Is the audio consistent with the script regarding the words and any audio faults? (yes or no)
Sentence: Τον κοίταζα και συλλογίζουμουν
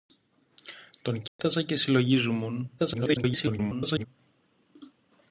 no